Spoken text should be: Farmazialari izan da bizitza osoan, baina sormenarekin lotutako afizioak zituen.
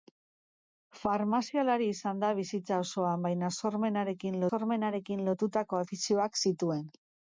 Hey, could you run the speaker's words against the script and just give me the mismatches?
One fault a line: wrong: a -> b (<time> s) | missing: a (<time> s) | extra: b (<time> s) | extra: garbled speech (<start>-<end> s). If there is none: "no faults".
extra: sormenarekin (4.5 s)